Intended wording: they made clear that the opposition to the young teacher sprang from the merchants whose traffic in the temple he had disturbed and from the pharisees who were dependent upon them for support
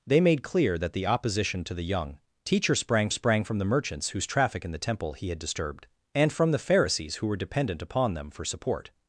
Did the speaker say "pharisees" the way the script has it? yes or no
yes